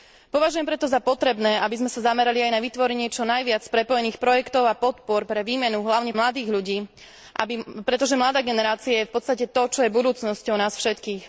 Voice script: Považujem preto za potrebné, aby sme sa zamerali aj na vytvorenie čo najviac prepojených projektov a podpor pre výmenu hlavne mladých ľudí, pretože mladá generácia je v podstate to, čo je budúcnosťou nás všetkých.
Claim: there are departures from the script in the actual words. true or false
false